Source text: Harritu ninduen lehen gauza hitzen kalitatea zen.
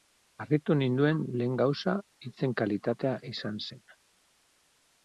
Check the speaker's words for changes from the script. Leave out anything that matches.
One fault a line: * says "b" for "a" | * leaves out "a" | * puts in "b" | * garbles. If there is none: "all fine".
* puts in "izan"